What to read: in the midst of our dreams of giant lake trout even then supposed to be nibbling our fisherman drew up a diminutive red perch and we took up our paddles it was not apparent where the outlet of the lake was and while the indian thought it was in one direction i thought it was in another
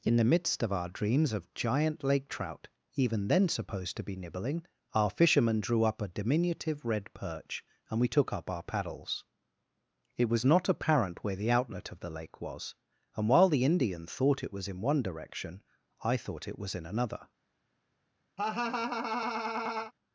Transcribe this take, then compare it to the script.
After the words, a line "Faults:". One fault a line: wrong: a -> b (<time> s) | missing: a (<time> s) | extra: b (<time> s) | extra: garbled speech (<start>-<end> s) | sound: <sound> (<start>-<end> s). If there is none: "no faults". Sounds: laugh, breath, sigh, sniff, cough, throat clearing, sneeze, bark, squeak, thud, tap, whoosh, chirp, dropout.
in the midst of our dreams of giant lake trout even then supposed to be nibbling our fisherman drew up a diminutive red perch and we took up our paddles it was not apparent where the outlet of the lake was and while the indian thought it was in one direction i thought it was in another
Faults:
sound: laugh (18.4-19.9 s)